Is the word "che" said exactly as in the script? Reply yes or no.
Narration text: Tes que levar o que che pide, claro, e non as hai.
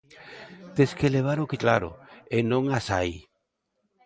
no